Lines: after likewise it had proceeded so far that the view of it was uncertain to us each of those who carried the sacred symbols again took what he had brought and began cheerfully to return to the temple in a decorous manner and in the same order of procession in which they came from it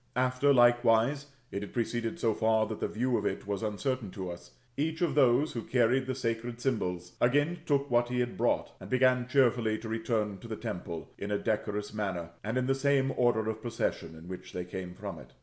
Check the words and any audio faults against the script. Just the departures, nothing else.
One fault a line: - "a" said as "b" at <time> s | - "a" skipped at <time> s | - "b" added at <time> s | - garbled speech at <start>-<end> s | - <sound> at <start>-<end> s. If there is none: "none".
none